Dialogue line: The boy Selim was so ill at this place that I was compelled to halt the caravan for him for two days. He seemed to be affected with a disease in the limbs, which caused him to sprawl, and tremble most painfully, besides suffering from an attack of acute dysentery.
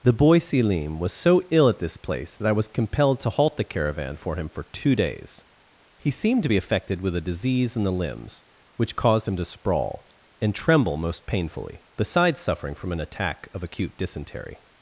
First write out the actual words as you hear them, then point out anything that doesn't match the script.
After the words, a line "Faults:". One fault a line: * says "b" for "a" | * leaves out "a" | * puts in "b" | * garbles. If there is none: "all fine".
The boy Selim was so ill at this place that I was compelled to halt the caravan for him for two days. He seemed to be affected with a disease in the limbs, which caused him to sprawl, and tremble most painfully, besides suffering from an attack of acute dysentery.
Faults:
all fine